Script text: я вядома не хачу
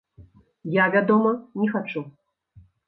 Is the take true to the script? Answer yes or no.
yes